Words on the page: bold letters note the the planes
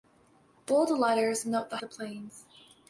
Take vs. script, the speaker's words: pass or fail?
pass